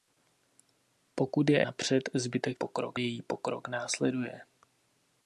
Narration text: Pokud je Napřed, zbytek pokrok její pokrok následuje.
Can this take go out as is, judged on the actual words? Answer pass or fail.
pass